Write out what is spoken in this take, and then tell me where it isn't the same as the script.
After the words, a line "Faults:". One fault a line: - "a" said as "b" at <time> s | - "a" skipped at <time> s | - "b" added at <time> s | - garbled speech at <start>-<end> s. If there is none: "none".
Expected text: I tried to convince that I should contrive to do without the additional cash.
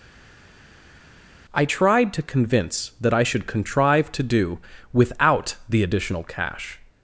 I tried to convince that I should contrive to do without the additional cash.
Faults:
none